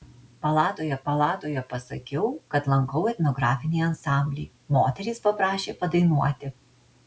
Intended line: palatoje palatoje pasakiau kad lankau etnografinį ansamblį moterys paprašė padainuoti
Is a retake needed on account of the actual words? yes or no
no